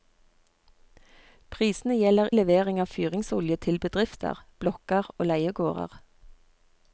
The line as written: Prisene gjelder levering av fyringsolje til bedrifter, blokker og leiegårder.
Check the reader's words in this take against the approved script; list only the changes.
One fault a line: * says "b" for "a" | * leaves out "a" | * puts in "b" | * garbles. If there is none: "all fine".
all fine